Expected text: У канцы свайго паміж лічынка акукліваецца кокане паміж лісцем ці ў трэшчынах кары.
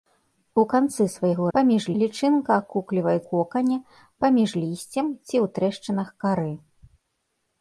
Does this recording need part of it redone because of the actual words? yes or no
no